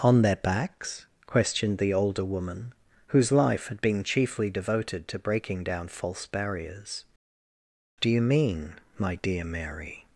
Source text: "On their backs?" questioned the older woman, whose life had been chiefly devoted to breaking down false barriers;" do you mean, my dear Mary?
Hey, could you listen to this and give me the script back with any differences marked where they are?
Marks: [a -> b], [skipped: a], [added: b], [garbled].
"On their backs?" questioned the older woman, whose life had been chiefly devoted to breaking down false barriers;" do you mean, my dear Mary?